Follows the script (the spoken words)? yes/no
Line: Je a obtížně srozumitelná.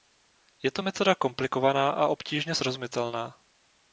no